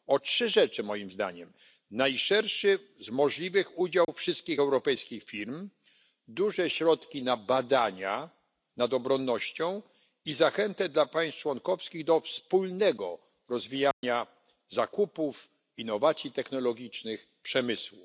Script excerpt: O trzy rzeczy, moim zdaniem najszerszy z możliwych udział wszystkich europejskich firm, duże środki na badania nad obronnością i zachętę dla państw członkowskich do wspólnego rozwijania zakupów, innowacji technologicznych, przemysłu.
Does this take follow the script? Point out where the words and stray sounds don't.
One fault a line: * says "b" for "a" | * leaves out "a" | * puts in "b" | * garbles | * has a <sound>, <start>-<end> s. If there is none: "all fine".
* has a dropout, 4.0-4.1 s
* has a dropout, 13.9-14.0 s